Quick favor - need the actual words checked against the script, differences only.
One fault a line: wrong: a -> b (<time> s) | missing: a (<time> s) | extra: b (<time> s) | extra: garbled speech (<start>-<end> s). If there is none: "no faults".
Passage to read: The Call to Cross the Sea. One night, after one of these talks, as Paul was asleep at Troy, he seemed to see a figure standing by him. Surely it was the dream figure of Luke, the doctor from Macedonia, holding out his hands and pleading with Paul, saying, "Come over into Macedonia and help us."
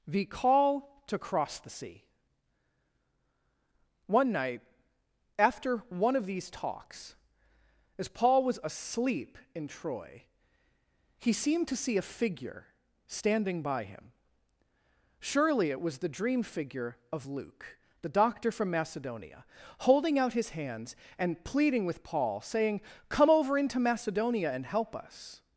wrong: at -> in (9.5 s)